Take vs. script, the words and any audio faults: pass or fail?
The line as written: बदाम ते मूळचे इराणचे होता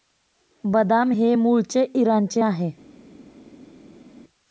fail